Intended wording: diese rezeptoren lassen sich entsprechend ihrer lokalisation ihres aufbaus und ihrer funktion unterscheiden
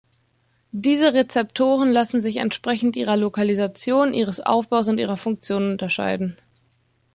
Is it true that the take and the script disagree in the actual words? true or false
false